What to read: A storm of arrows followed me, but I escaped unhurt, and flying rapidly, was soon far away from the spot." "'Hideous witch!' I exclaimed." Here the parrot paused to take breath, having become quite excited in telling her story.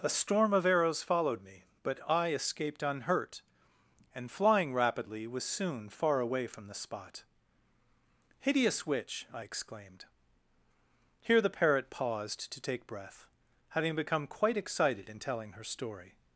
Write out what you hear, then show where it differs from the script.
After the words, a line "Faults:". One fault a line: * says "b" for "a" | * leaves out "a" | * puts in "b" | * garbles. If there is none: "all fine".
A storm of arrows followed me, but I escaped unhurt, and flying rapidly, was soon far away from the spot." "'Hideous witch!' I exclaimed." Here the parrot paused to take breath, having become quite excited in telling her story.
Faults:
all fine